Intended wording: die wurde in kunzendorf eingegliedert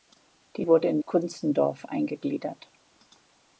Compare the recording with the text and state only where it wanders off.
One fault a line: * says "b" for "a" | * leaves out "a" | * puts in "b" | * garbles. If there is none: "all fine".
all fine